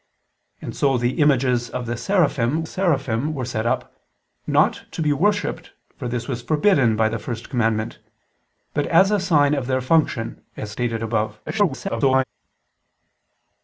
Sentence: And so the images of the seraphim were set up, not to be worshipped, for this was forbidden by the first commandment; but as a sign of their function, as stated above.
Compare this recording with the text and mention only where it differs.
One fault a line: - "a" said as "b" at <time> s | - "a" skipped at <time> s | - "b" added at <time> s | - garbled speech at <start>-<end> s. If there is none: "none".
- "seraphim" added at 2.6 s
- garbled speech at 11.5-12.2 s